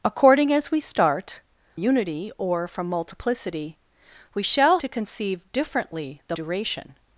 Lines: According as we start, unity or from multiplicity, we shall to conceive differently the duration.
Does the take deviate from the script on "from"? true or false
false